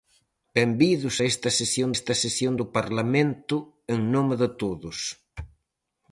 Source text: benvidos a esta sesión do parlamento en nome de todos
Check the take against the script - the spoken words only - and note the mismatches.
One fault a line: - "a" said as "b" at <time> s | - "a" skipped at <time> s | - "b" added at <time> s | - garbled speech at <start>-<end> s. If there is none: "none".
- "esta sesión" added at 1.9 s